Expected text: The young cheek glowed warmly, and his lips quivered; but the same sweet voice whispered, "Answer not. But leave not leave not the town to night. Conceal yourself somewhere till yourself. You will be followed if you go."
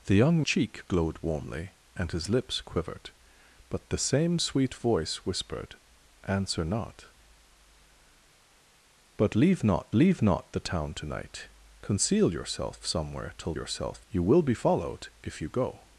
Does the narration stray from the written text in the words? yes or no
no